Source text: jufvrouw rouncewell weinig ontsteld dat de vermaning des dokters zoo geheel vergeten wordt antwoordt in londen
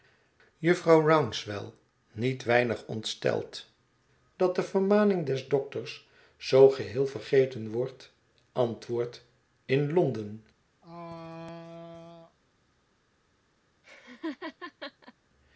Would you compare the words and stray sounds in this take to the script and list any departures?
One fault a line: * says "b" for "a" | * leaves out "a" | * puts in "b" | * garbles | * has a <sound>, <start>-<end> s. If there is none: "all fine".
* puts in "niet"
* has a throat clearing, 10.8-12.4 s
* has a laugh, 13.8-15.1 s